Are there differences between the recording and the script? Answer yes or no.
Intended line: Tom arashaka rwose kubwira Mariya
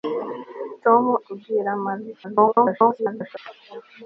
yes